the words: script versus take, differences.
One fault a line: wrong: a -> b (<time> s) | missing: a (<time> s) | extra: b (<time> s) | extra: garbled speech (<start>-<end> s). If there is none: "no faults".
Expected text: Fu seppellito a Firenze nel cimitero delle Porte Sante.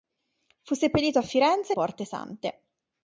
missing: nel cimitero delle (1.8 s)